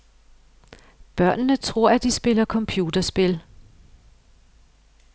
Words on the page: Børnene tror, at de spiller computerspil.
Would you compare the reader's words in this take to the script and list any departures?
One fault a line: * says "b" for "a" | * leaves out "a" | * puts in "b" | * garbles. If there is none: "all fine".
all fine